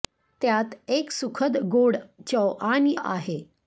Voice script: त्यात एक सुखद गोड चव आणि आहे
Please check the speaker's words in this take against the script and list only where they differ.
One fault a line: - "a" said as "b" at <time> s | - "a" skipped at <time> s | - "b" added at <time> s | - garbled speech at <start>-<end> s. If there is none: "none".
none